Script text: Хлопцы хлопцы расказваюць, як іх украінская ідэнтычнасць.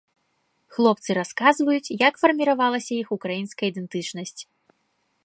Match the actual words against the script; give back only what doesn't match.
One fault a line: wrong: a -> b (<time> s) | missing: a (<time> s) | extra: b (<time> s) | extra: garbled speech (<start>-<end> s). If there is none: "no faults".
missing: хлопцы (1.1 s)
extra: фарміравалася (2.2 s)